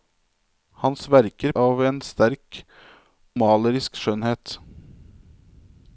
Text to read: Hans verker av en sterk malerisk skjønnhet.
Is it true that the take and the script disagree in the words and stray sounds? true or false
false